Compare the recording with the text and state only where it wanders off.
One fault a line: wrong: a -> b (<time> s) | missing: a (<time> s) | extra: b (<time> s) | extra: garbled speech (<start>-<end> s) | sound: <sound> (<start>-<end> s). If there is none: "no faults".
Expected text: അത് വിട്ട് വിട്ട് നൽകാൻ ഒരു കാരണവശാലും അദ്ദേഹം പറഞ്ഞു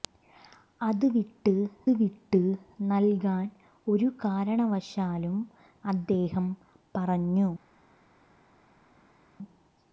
no faults